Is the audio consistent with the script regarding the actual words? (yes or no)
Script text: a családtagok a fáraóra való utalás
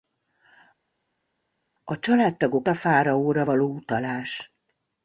yes